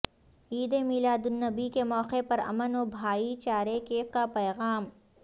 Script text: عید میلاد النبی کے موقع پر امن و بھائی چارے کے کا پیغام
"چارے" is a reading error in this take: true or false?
false